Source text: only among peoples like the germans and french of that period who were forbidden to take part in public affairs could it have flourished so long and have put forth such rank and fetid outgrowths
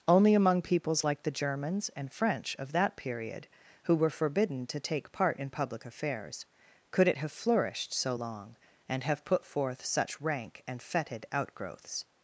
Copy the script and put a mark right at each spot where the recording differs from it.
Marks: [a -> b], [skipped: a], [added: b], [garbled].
only among peoples like the germans and french of that period who were forbidden to take part in public affairs could it have flourished so long and have put forth such rank and fetid outgrowths